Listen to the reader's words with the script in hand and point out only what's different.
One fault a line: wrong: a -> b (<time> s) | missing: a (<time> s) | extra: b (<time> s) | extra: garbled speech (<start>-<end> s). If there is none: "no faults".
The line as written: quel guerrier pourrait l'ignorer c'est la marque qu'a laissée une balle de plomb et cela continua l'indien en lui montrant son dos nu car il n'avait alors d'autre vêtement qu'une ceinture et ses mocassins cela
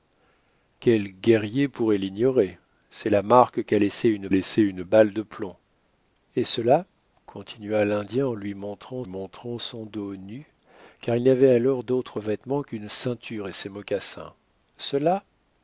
extra: laissée une (4.3 s)
extra: montrant (9.0 s)